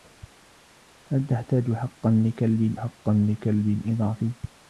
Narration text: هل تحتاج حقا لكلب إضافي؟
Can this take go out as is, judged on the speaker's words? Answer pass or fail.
fail